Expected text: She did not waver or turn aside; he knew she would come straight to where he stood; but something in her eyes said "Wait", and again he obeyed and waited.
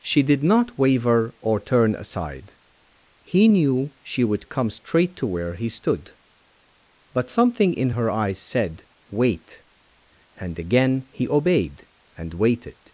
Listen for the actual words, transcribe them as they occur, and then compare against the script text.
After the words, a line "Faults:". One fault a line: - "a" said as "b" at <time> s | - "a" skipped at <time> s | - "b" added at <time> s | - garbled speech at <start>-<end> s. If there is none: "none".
She did not waver or turn aside; he knew she would come straight to where he stood; but something in her eyes said "Wait", and again he obeyed and waited.
Faults:
none